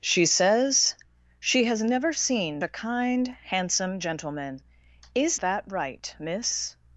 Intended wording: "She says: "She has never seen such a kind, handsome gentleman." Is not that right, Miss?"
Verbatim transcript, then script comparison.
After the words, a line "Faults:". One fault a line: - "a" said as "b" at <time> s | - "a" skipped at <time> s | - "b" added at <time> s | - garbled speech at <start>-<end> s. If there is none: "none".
"She says: "She has never seen a kind, handsome gentleman." Is that right, Miss?"
Faults:
- "such" skipped at 2.6 s
- "not" skipped at 5.4 s